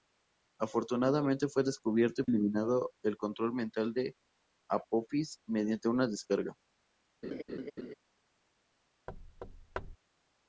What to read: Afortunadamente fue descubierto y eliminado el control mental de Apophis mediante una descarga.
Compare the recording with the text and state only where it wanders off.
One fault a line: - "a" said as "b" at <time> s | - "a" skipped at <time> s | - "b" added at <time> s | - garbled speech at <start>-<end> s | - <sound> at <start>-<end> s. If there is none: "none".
- laugh at 7.2-7.9 s
- thud at 9.1-10.0 s